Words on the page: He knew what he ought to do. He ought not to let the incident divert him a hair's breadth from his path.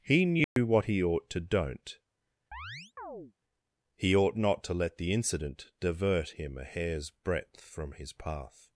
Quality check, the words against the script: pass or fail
fail